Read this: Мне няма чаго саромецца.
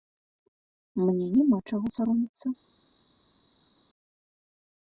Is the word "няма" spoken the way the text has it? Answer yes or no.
yes